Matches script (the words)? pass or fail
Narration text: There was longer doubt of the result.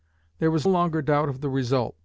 pass